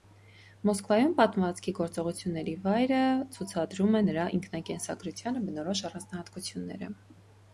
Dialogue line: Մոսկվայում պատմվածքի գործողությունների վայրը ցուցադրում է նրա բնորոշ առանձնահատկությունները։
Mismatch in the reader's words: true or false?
true